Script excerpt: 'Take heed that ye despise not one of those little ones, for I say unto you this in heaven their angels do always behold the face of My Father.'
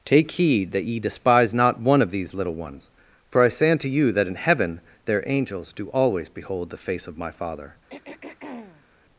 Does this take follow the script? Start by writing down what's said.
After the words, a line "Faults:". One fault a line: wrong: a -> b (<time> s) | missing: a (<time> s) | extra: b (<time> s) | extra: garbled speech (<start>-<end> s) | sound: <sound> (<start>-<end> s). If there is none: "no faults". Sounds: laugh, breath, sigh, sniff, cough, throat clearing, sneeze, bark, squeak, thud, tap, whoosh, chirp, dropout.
'Take heed that ye despise not one of these little ones, for I say unto you that in heaven their angels do always behold the face of My Father.'
Faults:
wrong: those -> these (2.1 s)
wrong: this -> that (4.1 s)
sound: throat clearing (7.9-8.9 s)